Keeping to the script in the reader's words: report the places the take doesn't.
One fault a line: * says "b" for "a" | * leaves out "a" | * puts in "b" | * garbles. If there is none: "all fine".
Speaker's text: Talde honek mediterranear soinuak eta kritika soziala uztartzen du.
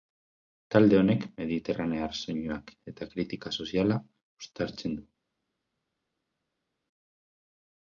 all fine